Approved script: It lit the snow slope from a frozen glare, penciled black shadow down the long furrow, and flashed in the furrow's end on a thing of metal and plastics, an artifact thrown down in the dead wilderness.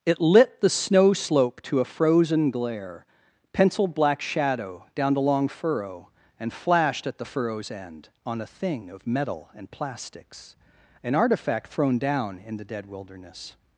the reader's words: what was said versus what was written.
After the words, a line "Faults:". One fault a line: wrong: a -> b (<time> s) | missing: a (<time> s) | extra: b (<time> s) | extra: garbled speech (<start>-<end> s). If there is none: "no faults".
It lit the snow slope to a frozen glare, penciled black shadow down the long furrow, and flashed at the furrow's end on a thing of metal and plastics, an artifact thrown down in the dead wilderness.
Faults:
wrong: from -> to (1.6 s)
wrong: in -> at (7.0 s)